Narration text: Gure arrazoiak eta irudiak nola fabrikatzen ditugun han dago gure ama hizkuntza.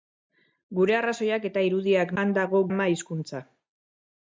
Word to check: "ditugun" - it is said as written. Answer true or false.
false